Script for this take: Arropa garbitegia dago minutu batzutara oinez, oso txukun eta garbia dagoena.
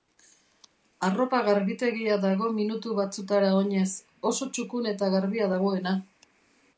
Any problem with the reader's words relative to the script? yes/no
no